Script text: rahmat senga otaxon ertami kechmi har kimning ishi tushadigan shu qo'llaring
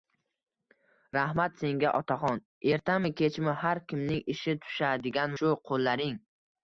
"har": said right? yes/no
yes